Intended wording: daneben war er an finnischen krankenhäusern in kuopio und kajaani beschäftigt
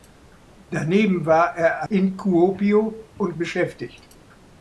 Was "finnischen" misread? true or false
true